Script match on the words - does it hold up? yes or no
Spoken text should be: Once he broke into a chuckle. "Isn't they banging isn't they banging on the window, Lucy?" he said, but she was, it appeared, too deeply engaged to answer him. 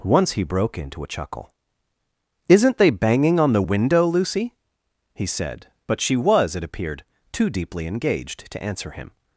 no